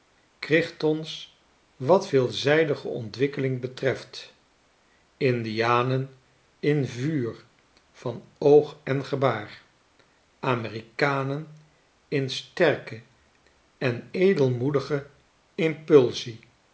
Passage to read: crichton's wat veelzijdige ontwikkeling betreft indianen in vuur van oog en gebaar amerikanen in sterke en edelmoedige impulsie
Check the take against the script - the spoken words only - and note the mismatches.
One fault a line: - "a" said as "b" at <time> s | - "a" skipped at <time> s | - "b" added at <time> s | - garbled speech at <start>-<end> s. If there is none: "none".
none